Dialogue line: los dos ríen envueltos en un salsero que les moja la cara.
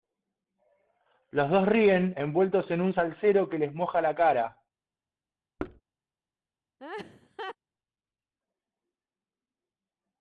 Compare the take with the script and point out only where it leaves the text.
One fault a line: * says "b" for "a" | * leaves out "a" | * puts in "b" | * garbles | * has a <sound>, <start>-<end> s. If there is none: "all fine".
* has a thud, 5.6-5.8 s
* has a laugh, 6.8-7.6 s